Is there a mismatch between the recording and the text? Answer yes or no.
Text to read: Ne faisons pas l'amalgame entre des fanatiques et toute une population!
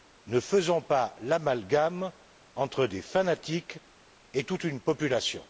no